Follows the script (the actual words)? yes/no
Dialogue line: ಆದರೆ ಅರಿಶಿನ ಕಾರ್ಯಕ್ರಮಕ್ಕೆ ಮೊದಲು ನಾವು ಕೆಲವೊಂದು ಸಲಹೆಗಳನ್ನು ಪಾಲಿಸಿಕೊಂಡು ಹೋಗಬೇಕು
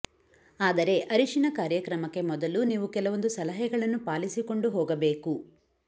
no